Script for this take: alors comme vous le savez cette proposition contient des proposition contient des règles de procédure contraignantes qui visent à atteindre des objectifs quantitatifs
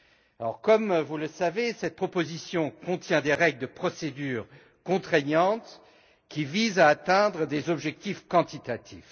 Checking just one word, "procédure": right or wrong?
right